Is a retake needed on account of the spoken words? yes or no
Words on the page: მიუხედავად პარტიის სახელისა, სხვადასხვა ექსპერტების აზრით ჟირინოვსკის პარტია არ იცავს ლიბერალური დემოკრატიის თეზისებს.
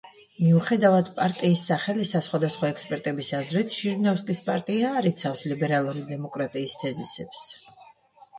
no